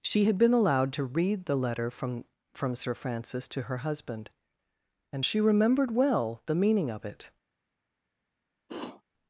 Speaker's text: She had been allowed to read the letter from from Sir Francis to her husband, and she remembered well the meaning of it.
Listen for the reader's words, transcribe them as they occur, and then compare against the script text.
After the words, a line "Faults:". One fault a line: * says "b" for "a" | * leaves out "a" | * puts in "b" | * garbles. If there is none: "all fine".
She had been allowed to read the letter from from Sir Francis to her husband, and she remembered well the meaning of it.
Faults:
all fine